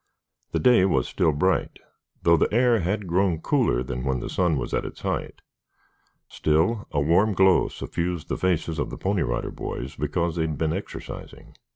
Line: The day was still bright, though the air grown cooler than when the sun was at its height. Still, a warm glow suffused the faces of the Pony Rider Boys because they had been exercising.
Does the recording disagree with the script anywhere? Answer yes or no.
yes